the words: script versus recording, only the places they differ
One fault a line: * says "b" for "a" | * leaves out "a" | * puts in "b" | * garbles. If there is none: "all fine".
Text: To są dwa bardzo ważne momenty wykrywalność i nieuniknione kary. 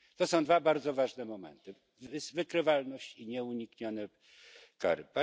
all fine